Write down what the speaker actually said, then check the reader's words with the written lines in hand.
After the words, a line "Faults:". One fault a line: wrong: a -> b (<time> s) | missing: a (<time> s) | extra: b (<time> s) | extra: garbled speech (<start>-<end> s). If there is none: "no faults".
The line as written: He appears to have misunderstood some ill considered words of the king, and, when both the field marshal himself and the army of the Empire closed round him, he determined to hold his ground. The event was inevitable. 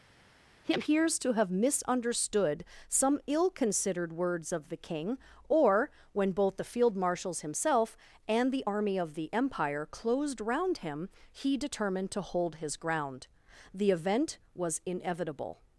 He appears to have misunderstood some ill considered words of the king, or, when both the field marshals himself and the army of the Empire closed round him, he determined to hold his ground. The event was inevitable.
Faults:
wrong: and -> or (5.5 s)
wrong: marshal -> marshals (6.9 s)